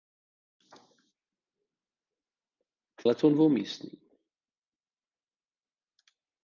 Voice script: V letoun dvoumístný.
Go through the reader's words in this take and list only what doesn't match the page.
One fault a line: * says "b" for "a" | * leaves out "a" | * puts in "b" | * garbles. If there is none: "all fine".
all fine